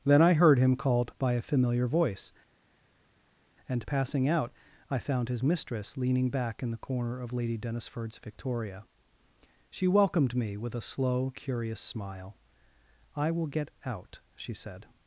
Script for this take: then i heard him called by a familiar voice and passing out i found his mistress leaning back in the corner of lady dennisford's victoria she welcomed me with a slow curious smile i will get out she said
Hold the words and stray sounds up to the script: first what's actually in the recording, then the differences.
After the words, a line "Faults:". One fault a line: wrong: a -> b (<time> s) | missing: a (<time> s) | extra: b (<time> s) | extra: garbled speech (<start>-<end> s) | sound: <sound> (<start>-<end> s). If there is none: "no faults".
then i heard him called by a familiar voice and passing out i found his mistress leaning back in the corner of lady dennisford's victoria she welcomed me with a slow curious smile i will get out she said
Faults:
no faults